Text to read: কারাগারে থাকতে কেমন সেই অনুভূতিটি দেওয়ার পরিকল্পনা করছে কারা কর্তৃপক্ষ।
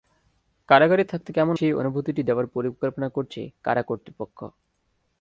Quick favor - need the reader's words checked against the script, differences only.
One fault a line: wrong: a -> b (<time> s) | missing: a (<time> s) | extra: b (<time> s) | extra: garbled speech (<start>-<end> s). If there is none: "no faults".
no faults